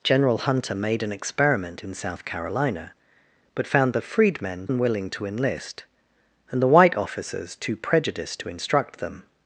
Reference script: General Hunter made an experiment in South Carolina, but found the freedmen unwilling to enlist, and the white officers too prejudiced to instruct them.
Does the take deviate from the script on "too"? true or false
false